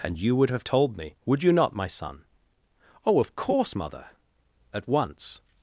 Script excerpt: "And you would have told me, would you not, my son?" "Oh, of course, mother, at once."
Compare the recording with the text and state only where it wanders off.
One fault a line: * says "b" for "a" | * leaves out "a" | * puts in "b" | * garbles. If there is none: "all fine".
all fine